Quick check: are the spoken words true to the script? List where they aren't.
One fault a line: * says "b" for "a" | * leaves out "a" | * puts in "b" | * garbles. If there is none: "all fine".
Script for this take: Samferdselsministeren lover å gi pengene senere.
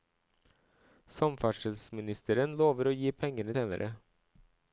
all fine